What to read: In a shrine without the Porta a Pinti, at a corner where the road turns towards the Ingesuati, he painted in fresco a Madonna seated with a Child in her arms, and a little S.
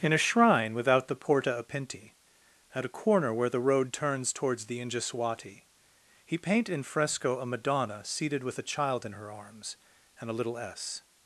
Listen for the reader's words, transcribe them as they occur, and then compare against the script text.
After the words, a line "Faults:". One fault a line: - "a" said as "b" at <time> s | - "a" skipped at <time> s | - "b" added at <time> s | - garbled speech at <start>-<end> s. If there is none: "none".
In a shrine without the Porta a Pinti, at a corner where the road turns towards the Ingesuati, he paint in fresco a Madonna seated with a Child in her arms, and a little S.
Faults:
- "painted" said as "paint" at 6.4 s